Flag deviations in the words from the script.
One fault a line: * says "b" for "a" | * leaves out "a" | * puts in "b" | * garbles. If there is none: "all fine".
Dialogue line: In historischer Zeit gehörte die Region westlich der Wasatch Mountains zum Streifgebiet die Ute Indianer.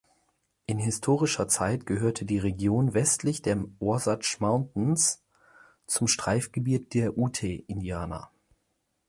* says "der" for "die"